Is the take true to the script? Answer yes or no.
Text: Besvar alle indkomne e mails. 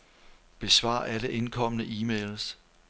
yes